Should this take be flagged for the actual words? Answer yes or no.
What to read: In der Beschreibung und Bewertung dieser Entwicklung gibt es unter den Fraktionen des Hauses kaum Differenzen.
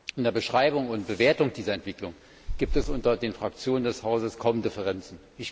no